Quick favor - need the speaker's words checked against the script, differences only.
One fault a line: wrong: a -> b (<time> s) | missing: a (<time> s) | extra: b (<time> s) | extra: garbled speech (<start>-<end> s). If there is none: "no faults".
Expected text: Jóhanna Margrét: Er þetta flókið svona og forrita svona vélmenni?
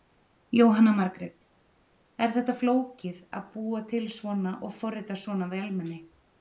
extra: að búa til (3.4 s)